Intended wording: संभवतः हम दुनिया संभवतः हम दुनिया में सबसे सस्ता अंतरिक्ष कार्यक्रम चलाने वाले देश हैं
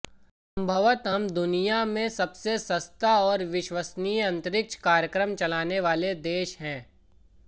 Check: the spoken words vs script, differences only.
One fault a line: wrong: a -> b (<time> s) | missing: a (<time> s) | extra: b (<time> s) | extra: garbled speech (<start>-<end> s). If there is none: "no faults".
missing: संभवतः हम दुनिया (1.8 s)
extra: और विश्वसनीय (3.2 s)